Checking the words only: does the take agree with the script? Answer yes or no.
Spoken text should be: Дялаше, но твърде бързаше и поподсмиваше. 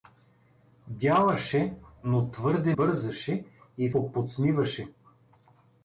yes